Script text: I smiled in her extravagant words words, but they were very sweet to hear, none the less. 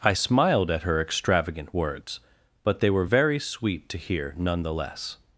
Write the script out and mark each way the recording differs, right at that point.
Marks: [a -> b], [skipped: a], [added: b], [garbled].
I smiled [in -> at] her extravagant words [skipped: words,] but they were very sweet to hear, none the less.